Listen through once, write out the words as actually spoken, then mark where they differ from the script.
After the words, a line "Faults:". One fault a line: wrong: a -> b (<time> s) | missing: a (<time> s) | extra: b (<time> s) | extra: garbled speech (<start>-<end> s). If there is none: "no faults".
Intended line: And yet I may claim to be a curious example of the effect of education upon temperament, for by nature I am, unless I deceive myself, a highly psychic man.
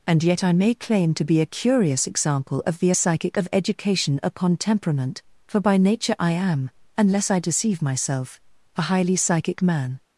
And yet I may claim to be a curious example of the psychic of education upon temperament, for by nature I am, unless I deceive myself, a highly psychic man.
Faults:
wrong: effect -> psychic (2.9 s)